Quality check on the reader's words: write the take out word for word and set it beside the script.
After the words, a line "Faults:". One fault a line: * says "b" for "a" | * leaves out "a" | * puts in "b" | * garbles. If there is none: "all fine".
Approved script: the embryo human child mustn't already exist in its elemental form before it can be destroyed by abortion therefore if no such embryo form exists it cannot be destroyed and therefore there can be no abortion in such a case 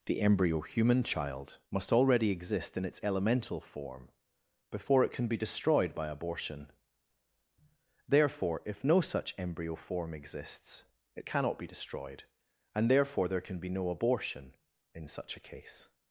the embryo human child must already exist in its elemental form before it can be destroyed by abortion therefore if no such embryo form exists it cannot be destroyed and therefore there can be no abortion in such a case
Faults:
* says "must" for "mustn't"